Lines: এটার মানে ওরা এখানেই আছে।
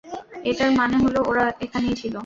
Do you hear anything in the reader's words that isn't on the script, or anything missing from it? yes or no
yes